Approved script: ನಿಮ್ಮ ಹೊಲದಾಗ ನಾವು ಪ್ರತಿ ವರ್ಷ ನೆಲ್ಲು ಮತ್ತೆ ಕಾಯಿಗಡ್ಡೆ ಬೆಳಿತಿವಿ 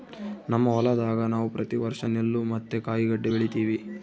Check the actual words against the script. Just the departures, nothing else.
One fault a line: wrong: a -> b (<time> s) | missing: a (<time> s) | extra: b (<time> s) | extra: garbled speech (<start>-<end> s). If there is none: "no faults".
wrong: ನಿಮ್ಮ -> ನಮ್ಮ (0.5 s)